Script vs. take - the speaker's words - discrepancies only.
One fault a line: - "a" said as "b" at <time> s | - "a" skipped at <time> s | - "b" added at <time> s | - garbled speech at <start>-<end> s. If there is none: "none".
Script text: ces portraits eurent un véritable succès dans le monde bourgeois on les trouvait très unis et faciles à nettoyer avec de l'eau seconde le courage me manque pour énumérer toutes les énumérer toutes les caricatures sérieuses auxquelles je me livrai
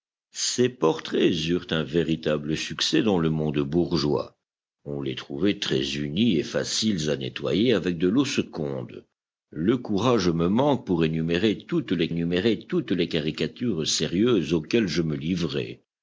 none